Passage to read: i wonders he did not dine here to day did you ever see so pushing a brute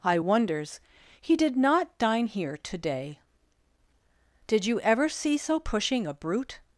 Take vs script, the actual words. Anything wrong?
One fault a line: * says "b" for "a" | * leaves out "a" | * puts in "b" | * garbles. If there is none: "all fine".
all fine